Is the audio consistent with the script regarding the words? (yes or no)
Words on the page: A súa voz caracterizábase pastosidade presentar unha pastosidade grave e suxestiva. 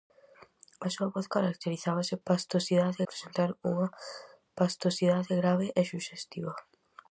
yes